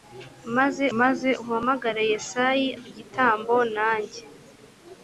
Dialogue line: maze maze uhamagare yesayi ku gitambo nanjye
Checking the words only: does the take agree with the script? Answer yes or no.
yes